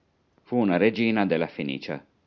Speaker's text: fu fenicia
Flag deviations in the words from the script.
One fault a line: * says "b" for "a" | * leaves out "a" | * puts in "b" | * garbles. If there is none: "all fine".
* puts in "una regina della"